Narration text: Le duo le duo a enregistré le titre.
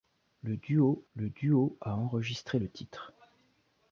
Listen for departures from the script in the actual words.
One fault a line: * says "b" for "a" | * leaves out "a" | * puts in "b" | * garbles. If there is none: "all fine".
all fine